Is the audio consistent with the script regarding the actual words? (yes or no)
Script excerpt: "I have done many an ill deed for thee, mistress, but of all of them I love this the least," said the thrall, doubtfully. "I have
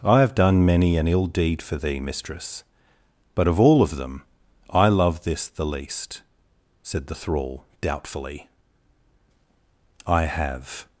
yes